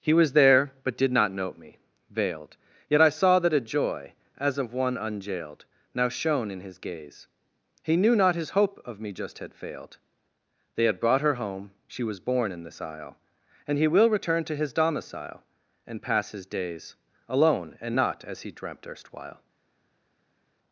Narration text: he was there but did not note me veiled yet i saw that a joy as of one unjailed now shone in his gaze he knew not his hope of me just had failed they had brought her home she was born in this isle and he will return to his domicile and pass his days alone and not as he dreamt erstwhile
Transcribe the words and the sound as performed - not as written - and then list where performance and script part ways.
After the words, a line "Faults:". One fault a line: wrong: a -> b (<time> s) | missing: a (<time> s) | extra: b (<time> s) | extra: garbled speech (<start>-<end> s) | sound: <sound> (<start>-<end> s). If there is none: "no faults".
he was there but did not note me veiled yet i saw that a joy as of one unjailed now shone in his gaze he knew not his hope of me just had failed they had brought her home she was born in this isle and he will return to his domicile and pass his days alone and not as he dreamt erstwhile
Faults:
no faults